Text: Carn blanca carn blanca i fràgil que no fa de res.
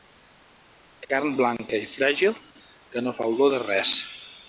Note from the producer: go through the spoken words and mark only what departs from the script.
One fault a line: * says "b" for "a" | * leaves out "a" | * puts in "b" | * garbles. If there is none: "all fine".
* leaves out "carn blanca"
* puts in "olor"